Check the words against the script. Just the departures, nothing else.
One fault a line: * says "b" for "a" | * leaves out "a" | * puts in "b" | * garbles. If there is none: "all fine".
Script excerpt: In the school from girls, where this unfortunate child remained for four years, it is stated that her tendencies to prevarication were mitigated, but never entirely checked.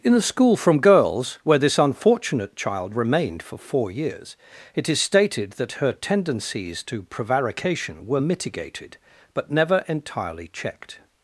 all fine